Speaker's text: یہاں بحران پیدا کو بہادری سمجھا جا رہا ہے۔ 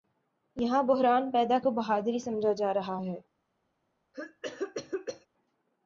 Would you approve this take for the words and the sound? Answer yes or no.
no